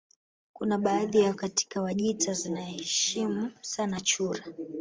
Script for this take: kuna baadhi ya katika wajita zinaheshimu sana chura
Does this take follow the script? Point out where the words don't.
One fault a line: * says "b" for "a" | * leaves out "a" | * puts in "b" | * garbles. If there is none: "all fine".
all fine